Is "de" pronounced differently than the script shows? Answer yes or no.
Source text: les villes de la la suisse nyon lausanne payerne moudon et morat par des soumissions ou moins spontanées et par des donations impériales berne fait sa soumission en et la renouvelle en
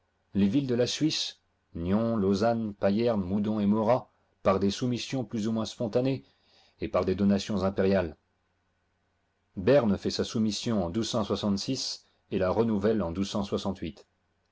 no